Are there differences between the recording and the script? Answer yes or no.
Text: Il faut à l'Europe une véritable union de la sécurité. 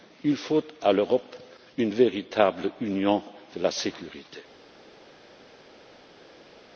no